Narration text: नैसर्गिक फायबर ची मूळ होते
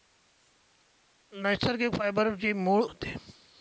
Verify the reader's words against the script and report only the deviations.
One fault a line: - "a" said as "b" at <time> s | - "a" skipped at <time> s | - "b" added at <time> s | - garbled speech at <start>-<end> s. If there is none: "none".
none